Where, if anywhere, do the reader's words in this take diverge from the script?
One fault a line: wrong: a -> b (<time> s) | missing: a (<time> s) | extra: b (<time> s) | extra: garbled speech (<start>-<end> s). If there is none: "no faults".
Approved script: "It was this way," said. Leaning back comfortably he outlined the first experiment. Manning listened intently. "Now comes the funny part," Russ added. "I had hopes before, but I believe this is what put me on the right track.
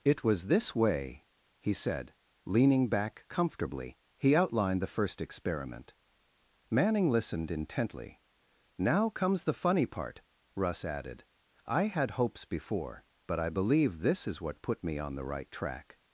extra: he (1.6 s)